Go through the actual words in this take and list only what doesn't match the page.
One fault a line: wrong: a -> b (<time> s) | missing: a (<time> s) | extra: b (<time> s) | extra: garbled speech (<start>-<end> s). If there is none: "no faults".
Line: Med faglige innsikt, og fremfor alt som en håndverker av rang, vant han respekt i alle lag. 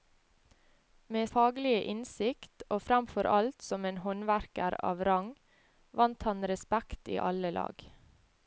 no faults